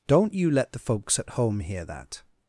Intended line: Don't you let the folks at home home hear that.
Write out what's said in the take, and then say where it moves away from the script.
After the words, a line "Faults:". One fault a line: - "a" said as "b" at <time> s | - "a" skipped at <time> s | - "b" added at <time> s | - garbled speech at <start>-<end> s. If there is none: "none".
Don't you let the folks at home hear that.
Faults:
- "home" skipped at 1.6 s